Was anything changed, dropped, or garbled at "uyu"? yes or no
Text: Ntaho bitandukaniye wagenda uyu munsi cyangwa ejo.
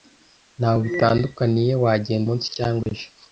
yes